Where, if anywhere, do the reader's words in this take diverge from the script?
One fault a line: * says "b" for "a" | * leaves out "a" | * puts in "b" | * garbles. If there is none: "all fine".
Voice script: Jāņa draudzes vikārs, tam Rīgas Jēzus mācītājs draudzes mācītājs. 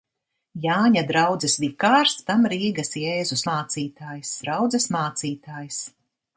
all fine